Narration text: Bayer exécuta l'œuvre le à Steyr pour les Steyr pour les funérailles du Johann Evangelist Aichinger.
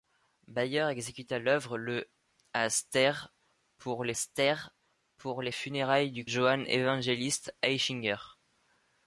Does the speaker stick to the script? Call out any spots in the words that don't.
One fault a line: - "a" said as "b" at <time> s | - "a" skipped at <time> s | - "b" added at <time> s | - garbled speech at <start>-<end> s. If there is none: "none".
none